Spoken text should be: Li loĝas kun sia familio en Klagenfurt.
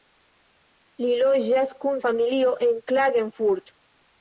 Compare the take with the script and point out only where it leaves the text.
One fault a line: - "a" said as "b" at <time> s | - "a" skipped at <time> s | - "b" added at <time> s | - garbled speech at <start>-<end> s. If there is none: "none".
- "sia" skipped at 2.0 s